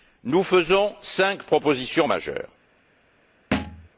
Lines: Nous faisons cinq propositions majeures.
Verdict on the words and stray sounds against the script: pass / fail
fail